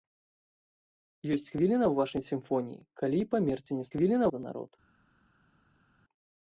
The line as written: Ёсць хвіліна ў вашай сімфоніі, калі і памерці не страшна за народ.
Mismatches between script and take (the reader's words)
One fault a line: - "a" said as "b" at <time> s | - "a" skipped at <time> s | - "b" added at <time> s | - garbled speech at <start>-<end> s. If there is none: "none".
- "страшна" said as "хвіліна" at 4.0 s